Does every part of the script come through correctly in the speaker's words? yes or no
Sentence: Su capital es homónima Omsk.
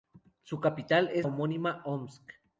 yes